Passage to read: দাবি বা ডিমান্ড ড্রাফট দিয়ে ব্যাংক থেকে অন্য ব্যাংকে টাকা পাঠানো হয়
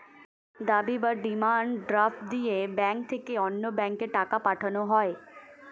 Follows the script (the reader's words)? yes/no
yes